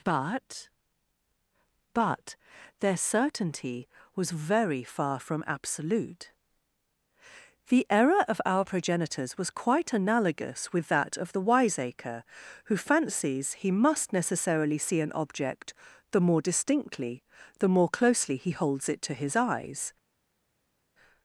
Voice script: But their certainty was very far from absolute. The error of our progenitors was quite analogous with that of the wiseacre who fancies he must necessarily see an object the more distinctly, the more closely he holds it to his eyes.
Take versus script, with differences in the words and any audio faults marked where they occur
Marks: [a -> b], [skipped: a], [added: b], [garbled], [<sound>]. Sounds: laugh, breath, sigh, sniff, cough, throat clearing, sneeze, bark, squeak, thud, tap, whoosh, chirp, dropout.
But [added: but] their certainty was very far from absolute. The error of our progenitors was quite analogous with that of the wiseacre who fancies he must necessarily see an object the more distinctly, the more closely he holds it to his eyes.